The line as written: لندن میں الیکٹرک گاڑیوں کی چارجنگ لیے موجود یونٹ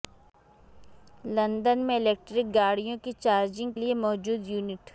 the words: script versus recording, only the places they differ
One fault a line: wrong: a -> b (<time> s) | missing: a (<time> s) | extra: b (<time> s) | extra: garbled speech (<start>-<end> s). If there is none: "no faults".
no faults